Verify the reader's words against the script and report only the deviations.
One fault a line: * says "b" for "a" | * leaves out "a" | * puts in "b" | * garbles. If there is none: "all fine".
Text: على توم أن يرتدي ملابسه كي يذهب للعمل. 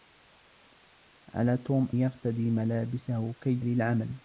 * leaves out "أن"
* leaves out "يذهب"